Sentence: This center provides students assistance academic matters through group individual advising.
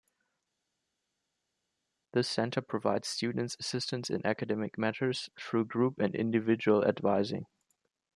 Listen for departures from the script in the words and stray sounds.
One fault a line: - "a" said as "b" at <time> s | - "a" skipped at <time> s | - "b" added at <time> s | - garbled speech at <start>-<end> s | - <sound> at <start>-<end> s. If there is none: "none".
- "in" added at 4.1 s
- "and" added at 6.0 s